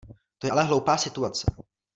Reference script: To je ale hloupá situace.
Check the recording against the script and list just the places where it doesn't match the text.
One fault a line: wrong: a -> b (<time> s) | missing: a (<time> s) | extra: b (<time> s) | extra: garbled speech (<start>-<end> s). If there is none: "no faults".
no faults